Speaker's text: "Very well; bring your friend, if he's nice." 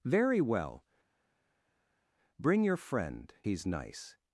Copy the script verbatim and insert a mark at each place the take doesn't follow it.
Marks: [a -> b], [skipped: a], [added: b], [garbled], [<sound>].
"Very well; bring your friend, [skipped: if] he's nice."